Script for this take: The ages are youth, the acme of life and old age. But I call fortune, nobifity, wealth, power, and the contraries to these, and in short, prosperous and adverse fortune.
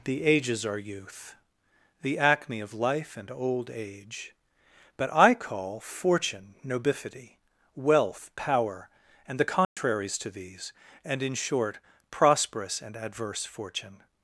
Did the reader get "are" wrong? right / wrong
right